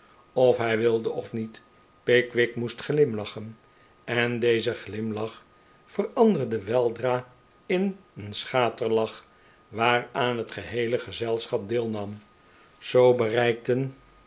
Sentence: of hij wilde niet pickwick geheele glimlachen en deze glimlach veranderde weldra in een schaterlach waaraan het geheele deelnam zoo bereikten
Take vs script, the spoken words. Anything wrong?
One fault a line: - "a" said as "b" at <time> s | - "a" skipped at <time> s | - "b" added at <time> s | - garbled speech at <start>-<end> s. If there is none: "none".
- "of" added at 1.1 s
- "geheele" said as "moest" at 2.5 s
- "gezelschap" added at 11.0 s